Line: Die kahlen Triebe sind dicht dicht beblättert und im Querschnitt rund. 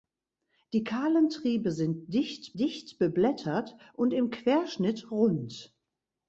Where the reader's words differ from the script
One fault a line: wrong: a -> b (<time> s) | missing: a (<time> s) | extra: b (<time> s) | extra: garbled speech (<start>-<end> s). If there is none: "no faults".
no faults